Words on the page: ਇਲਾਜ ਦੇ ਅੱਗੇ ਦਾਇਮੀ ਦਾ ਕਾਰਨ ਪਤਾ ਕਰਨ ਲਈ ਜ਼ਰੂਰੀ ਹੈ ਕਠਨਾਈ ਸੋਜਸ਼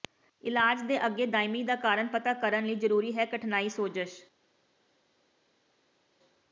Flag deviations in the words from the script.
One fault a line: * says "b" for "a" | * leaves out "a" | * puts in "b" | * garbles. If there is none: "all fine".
all fine